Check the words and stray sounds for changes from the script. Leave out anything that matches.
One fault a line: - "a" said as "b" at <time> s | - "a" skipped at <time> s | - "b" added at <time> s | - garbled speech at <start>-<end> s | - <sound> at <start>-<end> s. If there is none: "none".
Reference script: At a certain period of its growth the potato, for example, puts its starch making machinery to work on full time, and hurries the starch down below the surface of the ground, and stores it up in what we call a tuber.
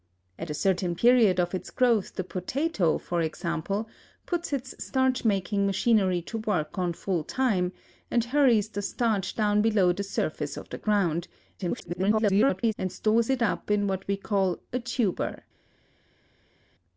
- garbled speech at 11.6-12.7 s